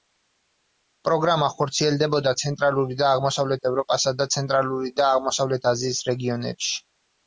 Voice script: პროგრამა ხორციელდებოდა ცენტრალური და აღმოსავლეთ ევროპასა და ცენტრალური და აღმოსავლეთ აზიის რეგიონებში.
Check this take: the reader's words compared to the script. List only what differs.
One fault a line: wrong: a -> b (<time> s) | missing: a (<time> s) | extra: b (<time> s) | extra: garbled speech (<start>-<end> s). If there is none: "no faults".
no faults